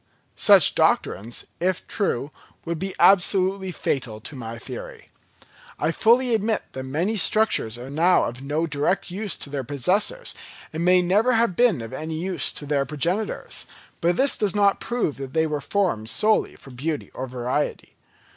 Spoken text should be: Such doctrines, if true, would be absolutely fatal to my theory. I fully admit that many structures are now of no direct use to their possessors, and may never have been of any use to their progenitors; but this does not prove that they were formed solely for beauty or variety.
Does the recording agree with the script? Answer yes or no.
yes